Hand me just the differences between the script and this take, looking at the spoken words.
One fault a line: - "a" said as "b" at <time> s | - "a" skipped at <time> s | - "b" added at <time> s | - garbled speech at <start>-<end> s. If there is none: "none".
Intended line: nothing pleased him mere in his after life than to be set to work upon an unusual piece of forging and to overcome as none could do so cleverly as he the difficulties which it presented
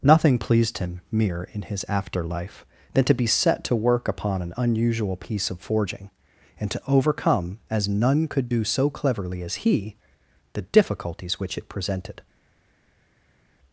none